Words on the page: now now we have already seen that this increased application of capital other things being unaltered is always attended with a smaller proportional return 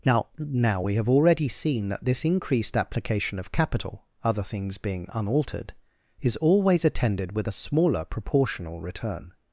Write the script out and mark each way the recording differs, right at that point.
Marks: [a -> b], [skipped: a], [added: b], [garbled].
now now we have already seen that this increased application of capital other things being unaltered is always attended with a smaller proportional return